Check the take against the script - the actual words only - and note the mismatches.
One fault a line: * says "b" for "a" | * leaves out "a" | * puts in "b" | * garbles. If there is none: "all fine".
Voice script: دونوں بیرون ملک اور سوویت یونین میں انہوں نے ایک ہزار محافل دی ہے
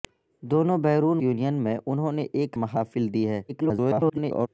* leaves out "ملک اور سوویت"
* leaves out "ہزار"
* garbles